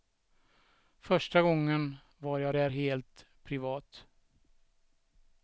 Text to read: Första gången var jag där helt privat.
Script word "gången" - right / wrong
right